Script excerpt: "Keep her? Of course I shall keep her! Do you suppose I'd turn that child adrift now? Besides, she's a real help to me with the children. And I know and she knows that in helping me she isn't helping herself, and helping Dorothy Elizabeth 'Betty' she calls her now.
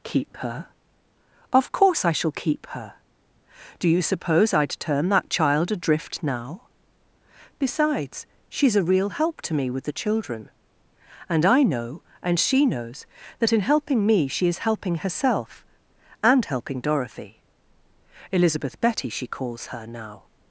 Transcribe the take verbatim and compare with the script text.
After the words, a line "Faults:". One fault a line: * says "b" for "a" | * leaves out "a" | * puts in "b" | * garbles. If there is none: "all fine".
"Keep her? Of course I shall keep her! Do you suppose I'd turn that child adrift now? Besides, she's a real help to me with the children. And I know and she knows that in helping me she is helping herself, and helping Dorothy Elizabeth 'Betty' she calls her now.
Faults:
* says "is" for "isn't"